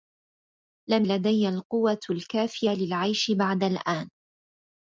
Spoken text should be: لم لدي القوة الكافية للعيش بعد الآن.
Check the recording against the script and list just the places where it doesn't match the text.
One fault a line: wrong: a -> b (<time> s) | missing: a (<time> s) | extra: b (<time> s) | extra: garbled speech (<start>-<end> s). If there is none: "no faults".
no faults